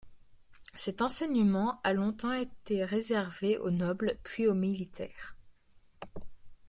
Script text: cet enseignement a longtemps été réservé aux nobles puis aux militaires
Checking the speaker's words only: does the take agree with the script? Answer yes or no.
yes